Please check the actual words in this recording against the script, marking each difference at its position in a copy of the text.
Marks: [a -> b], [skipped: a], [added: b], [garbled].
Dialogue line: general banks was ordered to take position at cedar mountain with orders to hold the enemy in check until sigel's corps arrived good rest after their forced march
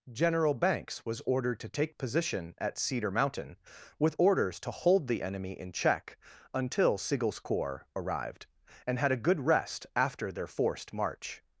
general banks was ordered to take position at cedar mountain with orders to hold the enemy in check until sigel's corps arrived [added: and had a] good rest after their forced march